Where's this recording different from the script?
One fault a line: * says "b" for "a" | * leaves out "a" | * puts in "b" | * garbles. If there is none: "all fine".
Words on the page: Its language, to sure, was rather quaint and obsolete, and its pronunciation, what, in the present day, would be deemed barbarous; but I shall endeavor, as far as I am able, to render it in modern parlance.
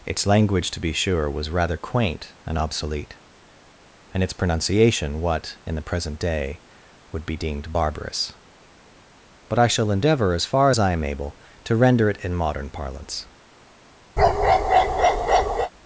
* puts in "be"